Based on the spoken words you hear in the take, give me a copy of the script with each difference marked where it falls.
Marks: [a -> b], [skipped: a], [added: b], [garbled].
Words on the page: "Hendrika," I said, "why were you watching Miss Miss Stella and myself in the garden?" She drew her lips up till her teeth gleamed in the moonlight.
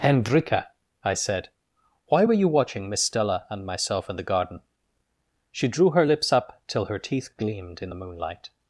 "Hendrika," I said, "why were you watching Miss [skipped: Miss] Stella and myself in the garden?" She drew her lips up till her teeth gleamed in the moonlight.